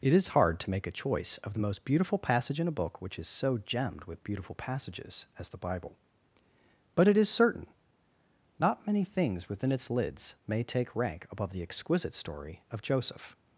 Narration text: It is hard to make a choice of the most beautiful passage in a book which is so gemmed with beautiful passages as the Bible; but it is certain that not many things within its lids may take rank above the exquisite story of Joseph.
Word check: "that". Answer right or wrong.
wrong